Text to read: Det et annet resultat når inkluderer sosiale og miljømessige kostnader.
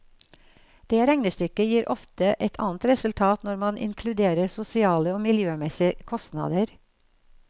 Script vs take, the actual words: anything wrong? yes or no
yes